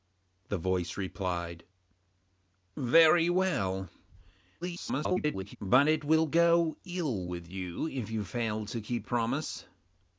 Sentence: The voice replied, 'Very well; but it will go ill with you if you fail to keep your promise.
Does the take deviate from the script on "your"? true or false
true